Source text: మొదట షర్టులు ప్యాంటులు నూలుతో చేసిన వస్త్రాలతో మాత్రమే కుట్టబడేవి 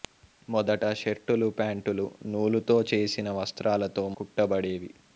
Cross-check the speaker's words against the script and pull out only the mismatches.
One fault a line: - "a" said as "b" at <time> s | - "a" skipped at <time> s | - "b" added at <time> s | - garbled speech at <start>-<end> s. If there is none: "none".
- "మాత్రమే" skipped at 4.0 s